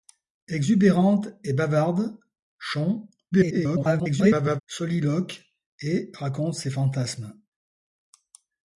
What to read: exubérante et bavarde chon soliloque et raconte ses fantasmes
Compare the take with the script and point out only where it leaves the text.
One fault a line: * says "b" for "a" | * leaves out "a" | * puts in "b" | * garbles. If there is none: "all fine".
* garbles